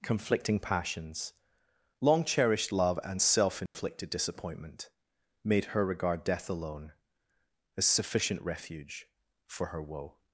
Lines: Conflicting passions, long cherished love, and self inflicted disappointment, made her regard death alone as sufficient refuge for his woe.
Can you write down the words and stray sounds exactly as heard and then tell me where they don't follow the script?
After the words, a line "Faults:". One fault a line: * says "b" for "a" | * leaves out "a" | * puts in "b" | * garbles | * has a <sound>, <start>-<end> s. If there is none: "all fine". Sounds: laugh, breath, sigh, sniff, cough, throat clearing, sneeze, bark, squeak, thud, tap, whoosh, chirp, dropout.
Conflicting passions, long cherished love, and self inflicted disappointment, made her regard death alone as sufficient refuge for her woe.
Faults:
* has a dropout, 3.7-3.7 s
* says "her" for "his"